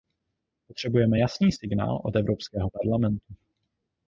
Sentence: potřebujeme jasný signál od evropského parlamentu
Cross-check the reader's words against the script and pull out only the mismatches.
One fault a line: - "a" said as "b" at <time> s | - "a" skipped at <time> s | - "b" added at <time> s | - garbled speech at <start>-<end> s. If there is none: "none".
none